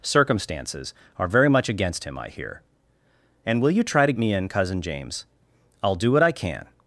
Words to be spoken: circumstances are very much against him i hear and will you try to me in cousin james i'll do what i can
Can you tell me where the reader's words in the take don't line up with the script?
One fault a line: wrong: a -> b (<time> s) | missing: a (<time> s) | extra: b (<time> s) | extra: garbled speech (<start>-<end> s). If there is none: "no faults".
no faults